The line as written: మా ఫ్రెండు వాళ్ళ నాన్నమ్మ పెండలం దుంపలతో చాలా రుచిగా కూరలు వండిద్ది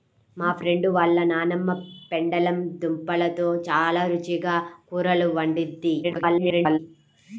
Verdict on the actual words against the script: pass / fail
fail